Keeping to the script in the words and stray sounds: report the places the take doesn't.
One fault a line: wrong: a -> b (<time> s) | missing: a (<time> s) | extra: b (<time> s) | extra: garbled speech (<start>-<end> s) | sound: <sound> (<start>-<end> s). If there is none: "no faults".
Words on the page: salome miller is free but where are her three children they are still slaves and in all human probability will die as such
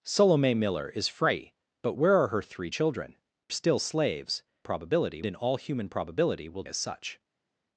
missing: they are (3.2 s)
wrong: and -> probability (4.6 s)
missing: die (6.6 s)